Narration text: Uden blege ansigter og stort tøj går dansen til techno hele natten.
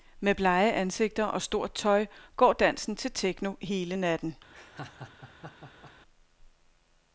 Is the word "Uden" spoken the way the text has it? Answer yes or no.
no